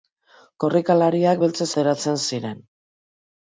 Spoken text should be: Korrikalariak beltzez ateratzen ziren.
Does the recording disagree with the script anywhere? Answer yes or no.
no